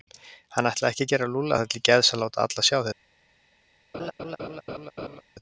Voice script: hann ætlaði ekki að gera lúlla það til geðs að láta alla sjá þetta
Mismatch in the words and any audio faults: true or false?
true